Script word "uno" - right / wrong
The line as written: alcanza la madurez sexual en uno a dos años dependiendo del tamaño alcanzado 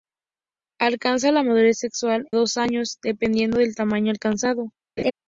wrong